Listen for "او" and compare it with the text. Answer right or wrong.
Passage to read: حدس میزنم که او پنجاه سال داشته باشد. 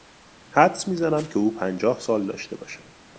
right